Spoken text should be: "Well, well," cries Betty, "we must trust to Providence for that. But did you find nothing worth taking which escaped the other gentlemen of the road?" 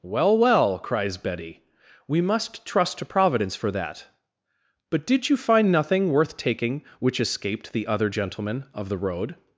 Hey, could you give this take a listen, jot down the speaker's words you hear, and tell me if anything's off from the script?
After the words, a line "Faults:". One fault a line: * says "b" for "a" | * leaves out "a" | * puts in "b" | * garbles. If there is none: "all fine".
"Well, well," cries Betty, "we must trust to Providence for that. But did you find nothing worth taking which escaped the other gentlemen of the road?"
Faults:
all fine